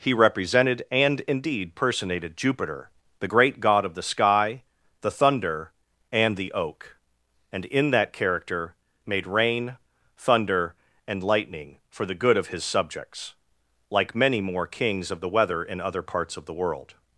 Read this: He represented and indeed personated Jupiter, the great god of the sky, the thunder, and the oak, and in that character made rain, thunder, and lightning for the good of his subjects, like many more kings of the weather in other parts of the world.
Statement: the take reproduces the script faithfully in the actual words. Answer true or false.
true